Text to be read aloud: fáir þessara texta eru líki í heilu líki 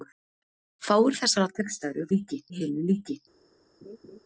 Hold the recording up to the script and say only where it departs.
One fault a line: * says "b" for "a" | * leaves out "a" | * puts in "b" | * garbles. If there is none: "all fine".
all fine